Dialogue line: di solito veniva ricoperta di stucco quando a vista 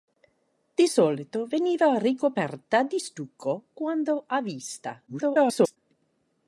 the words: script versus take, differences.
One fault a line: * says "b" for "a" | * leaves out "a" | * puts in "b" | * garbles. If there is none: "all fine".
* garbles